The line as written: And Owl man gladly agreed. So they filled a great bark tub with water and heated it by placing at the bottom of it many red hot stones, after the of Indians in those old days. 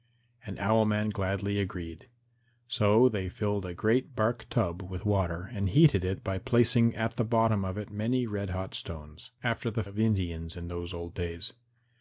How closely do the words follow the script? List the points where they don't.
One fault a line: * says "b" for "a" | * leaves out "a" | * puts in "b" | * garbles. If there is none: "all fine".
all fine